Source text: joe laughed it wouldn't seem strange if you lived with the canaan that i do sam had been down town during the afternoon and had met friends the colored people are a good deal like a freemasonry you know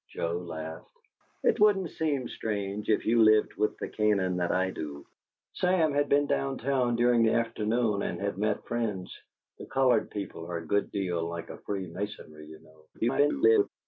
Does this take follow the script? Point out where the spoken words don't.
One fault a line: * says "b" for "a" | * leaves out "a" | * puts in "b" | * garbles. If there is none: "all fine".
* garbles